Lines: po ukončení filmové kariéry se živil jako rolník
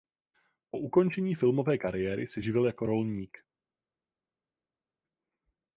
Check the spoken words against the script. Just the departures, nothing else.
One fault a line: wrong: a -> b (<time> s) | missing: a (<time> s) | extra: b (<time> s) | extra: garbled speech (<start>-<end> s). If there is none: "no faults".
no faults